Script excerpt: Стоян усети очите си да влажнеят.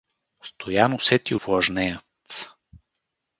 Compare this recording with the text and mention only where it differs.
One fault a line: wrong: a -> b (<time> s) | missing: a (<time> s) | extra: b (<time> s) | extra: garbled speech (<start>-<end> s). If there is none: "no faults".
missing: очите си да (1.4 s)